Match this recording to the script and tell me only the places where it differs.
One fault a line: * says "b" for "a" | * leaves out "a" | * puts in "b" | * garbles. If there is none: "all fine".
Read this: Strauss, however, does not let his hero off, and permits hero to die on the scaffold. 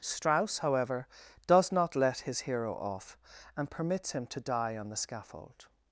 * says "him" for "hero"